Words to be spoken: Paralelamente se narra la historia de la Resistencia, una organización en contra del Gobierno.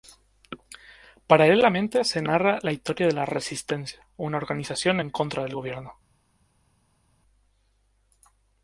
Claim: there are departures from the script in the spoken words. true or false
false